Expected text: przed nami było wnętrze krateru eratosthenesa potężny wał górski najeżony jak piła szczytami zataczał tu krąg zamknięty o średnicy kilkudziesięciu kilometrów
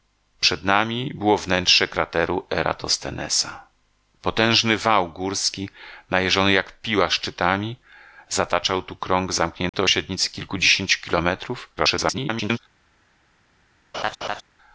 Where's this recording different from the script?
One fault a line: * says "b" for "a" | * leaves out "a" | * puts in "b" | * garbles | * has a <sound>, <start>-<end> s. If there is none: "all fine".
* has a dropout, 9.7-9.7 s
* garbles
* has a laugh, 13.9-14.4 s